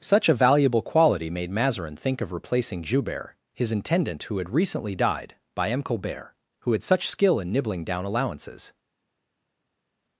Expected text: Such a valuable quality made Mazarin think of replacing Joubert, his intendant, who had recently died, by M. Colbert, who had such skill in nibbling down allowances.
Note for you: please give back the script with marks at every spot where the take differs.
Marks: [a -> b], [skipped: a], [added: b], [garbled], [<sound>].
Such a valuable quality made Mazarin think of replacing Joubert, his intendant, who had recently died, by M. Colbert, who had such skill in nibbling down allowances.